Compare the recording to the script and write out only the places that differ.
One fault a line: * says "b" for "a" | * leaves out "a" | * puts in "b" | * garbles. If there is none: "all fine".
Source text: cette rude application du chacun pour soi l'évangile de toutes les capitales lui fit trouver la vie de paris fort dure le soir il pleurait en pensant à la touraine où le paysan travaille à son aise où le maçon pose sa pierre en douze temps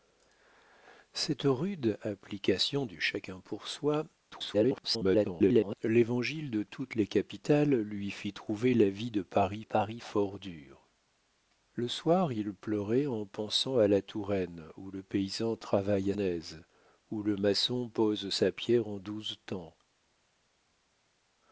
* garbles
* puts in "paris"
* leaves out "son"